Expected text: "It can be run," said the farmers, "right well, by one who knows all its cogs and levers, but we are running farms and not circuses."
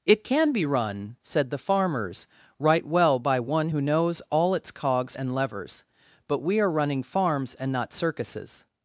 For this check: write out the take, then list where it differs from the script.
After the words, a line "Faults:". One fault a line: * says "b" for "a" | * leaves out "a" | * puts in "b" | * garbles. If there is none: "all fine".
"It can be run," said the farmers, "right well, by one who knows all its cogs and levers, but we are running farms and not circuses."
Faults:
all fine